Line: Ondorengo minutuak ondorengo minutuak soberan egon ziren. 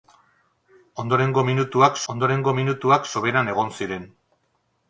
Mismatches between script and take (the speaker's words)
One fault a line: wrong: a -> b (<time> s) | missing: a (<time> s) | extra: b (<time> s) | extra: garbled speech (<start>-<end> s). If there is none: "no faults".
no faults